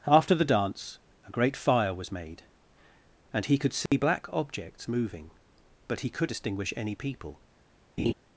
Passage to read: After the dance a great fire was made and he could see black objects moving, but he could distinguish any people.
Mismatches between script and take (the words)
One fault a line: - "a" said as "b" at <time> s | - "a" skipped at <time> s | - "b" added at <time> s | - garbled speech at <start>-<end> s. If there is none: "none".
none